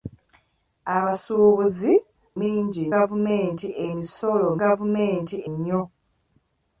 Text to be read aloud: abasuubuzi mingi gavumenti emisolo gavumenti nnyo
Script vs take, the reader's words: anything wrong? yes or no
no